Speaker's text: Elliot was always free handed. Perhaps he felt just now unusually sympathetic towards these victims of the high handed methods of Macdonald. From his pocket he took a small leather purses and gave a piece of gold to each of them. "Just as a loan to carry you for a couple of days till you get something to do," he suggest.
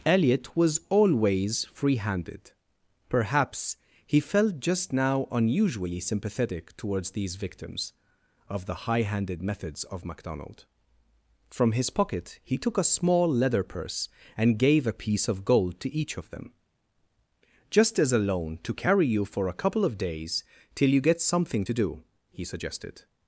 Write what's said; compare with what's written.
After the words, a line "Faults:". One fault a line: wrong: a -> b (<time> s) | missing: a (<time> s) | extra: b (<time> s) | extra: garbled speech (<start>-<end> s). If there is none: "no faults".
Elliot was always free handed. Perhaps he felt just now unusually sympathetic towards these victims of the high handed methods of Macdonald. From his pocket he took a small leather purse and gave a piece of gold to each of them. "Just as a loan to carry you for a couple of days till you get something to do," he suggested.
Faults:
wrong: purses -> purse (13.6 s)
wrong: suggest -> suggested (22.4 s)